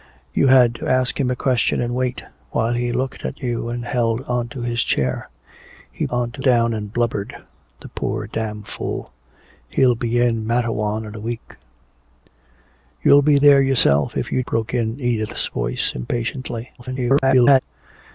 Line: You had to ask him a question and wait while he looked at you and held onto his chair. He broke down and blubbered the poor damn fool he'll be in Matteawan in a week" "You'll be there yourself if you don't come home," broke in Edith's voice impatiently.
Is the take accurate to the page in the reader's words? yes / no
no